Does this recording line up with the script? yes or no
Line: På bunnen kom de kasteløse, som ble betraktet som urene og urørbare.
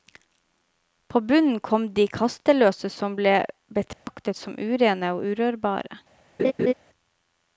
yes